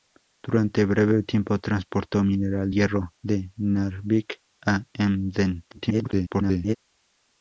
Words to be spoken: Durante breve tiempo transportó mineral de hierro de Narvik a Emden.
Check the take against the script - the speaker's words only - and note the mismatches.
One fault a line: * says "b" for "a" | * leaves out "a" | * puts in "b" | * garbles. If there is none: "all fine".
* leaves out "de"
* garbles